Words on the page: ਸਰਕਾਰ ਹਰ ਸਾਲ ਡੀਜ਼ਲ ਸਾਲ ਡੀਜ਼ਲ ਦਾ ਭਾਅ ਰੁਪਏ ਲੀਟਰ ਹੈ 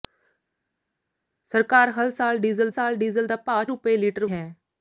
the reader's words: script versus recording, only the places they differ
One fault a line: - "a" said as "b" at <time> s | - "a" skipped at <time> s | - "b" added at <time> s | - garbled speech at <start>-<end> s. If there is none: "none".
none